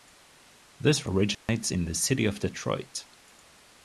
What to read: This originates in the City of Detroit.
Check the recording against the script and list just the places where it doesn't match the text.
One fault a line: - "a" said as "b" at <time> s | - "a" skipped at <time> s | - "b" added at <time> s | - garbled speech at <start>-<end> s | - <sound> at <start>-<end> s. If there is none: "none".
- dropout at 1.3-1.5 s